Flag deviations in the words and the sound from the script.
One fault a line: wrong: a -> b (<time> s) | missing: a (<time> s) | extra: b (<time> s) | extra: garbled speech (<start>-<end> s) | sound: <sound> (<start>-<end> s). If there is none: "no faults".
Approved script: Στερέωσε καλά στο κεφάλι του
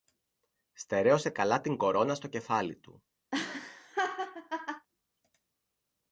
extra: την κορώνα (1.6 s)
sound: laugh (3.3-4.9 s)